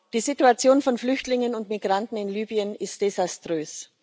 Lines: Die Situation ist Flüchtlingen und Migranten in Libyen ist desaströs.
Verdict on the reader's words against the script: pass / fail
fail